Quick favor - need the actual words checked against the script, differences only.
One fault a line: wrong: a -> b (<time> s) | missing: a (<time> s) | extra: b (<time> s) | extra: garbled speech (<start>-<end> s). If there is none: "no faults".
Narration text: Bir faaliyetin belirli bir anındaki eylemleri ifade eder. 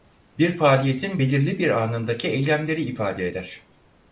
no faults